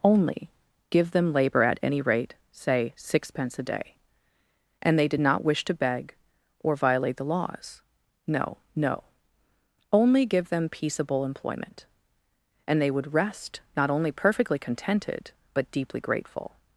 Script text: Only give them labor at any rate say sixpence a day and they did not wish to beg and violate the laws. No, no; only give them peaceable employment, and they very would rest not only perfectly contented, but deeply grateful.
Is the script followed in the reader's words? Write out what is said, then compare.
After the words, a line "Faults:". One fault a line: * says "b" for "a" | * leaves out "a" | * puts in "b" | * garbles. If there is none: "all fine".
Only give them labor at any rate say sixpence a day and they did not wish to beg or violate the laws. No, no; only give them peaceable employment, and they would rest not only perfectly contented, but deeply grateful.
Faults:
* says "or" for "and"
* leaves out "very"